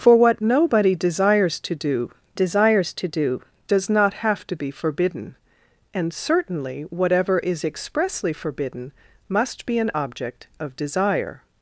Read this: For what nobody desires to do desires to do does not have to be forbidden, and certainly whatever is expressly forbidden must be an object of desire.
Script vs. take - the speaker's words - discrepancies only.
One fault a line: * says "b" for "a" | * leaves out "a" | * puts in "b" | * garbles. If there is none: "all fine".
all fine